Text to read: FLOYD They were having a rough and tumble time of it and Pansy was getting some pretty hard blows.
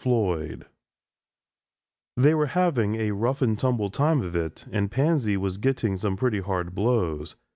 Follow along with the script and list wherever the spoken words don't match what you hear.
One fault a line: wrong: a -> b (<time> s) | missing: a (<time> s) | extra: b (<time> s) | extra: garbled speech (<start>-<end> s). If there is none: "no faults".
no faults